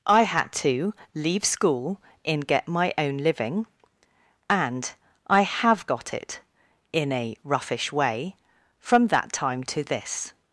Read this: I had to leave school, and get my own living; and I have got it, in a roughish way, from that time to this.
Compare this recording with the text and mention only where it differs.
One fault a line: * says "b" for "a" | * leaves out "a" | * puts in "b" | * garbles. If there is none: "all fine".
* says "in" for "and"